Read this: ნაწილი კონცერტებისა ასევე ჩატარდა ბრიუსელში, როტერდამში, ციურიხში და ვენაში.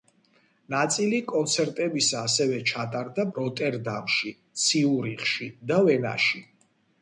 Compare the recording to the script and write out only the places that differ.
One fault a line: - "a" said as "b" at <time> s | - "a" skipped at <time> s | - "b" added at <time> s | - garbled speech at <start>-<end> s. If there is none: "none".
- "ბრიუსელში" skipped at 3.2 s